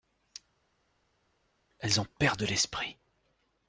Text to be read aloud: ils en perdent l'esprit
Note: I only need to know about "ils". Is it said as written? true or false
false